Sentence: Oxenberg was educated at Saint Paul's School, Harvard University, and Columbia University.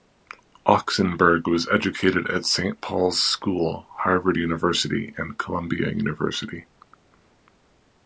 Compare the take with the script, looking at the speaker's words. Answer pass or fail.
pass